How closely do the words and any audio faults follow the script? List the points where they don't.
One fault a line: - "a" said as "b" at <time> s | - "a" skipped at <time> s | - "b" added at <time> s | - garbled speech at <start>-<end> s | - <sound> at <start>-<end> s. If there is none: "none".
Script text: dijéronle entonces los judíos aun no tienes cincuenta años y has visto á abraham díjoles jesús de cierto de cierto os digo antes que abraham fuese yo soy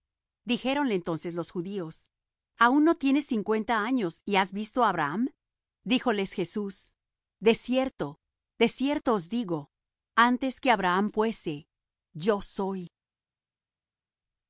none